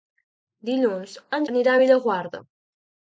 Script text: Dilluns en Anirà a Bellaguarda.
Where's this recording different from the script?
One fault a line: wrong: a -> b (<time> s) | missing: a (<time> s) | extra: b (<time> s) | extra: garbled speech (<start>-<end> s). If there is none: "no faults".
no faults